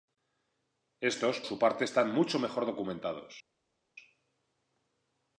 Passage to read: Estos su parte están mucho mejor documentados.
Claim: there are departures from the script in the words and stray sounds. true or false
false